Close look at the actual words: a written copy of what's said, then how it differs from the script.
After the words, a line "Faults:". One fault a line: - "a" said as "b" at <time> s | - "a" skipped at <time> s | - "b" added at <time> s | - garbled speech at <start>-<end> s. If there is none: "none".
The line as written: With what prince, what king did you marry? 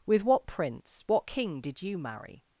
With what prince, what king did you marry?
Faults:
none